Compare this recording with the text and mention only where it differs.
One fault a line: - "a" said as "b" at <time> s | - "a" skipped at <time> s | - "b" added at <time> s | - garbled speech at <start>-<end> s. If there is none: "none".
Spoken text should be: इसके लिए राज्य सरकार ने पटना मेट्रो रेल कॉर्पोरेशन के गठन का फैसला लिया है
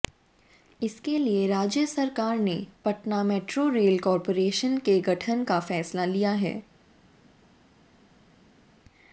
none